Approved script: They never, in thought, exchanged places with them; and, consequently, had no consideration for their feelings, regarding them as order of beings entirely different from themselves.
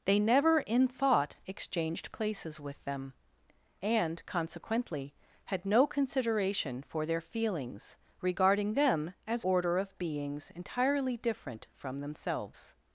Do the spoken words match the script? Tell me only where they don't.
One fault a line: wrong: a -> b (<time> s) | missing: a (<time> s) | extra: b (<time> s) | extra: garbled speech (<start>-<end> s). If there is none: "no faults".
no faults